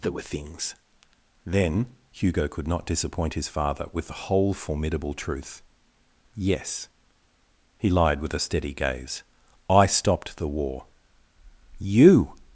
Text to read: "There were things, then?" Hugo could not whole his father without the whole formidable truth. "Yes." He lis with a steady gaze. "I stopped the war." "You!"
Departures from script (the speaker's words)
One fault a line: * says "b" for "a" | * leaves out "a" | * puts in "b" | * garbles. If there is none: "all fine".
* says "disappoint" for "whole"
* says "with" for "without"
* says "lied" for "lis"